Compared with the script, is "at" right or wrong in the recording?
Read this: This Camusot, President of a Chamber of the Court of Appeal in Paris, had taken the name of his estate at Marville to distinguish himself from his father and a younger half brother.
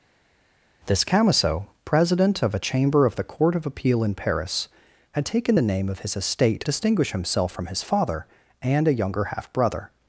wrong